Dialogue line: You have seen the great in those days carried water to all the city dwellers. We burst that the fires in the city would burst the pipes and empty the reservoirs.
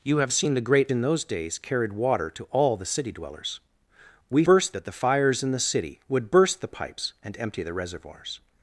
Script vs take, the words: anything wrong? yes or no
no